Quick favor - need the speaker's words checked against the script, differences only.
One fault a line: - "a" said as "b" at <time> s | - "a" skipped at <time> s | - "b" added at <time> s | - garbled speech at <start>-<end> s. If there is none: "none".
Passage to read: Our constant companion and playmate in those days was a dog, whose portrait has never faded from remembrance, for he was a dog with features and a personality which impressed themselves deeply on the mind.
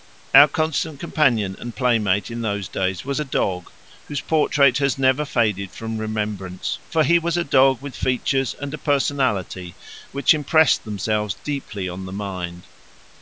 none